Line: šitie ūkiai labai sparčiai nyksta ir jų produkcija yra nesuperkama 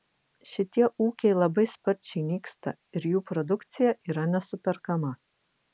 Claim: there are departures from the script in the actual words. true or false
false